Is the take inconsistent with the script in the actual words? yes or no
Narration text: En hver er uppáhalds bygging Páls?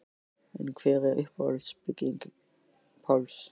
no